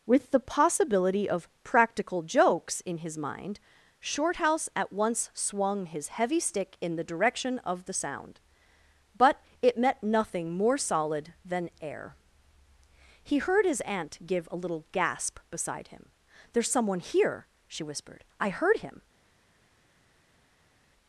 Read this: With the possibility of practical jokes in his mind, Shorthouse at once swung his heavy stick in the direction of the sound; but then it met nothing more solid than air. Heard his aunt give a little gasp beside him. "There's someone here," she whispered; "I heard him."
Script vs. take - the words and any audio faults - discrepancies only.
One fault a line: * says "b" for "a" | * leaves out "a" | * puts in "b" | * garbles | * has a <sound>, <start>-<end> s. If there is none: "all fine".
* leaves out "then"
* puts in "He"